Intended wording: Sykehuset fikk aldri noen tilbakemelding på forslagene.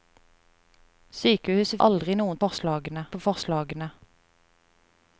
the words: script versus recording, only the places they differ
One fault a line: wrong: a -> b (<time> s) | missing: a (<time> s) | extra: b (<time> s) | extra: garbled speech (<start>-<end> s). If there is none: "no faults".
missing: fikk (1.8 s)
wrong: tilbakemelding -> forslagene (2.4 s)